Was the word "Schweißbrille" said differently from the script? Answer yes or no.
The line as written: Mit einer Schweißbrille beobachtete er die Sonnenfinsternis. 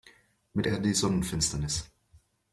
yes